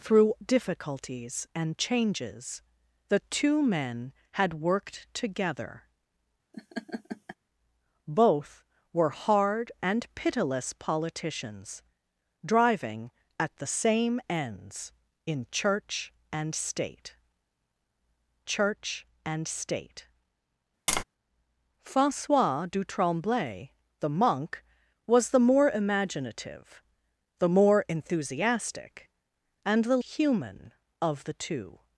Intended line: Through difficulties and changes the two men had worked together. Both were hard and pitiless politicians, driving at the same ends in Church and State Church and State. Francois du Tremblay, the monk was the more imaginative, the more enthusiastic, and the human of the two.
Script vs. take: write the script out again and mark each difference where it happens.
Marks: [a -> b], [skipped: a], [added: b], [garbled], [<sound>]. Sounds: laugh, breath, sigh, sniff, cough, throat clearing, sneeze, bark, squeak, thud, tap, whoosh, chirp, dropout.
Through difficulties and changes the two men had worked together. [laugh] Both were hard and pitiless politicians, driving at the same ends in Church and State Church and State. [tap] Francois du Tremblay, the monk was the more imaginative, the more enthusiastic, and the human of the two.